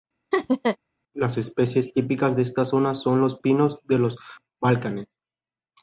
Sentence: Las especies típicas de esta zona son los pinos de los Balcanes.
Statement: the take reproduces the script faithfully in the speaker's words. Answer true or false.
true